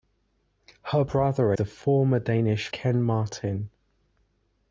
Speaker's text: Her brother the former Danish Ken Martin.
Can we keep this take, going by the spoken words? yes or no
yes